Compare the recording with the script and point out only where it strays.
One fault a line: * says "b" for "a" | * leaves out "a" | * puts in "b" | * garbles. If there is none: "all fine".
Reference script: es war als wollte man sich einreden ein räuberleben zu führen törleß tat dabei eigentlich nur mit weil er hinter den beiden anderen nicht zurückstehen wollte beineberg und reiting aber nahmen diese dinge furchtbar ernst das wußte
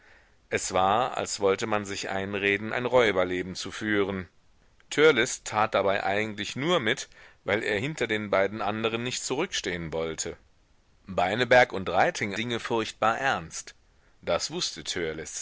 * leaves out "aber nahmen diese"